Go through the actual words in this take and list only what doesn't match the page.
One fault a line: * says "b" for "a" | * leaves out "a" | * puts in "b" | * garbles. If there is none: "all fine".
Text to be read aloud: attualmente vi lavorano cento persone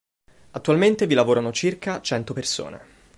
* puts in "circa"